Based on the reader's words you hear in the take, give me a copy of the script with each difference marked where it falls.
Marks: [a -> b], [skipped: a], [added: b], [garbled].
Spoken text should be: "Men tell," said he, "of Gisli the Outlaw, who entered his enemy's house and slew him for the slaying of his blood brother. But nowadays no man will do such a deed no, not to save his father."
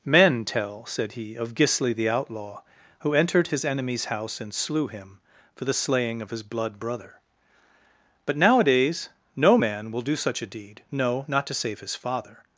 "Men tell," said he, "of Gisli the Outlaw, who entered his enemy's house and slew him for the slaying of his blood brother. But nowadays no man will do such a deed no, not to save his father."